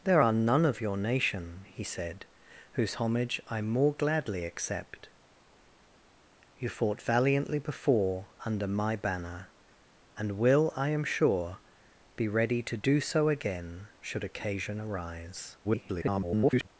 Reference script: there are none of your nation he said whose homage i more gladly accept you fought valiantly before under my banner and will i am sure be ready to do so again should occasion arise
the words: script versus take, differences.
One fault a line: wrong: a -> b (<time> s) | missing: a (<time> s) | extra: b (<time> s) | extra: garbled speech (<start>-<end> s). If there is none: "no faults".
extra: garbled speech (15.6-16.7 s)